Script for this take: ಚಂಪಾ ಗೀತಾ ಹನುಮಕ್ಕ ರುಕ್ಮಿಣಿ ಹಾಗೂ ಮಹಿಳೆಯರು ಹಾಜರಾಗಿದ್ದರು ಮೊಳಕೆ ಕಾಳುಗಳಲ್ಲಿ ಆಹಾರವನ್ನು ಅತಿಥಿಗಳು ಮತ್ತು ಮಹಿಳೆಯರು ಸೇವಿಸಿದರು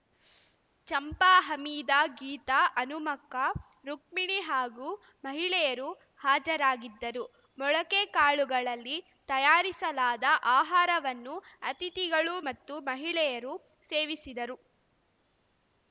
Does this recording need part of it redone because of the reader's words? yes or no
yes